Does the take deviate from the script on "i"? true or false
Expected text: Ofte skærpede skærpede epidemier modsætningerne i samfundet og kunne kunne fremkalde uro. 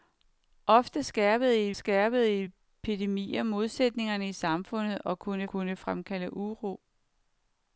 false